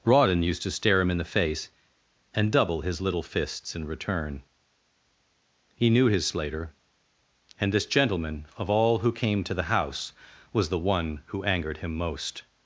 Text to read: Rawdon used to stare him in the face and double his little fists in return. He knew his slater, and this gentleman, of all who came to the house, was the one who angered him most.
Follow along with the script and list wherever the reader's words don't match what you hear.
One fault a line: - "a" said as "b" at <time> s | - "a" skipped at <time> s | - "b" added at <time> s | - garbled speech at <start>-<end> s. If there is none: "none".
none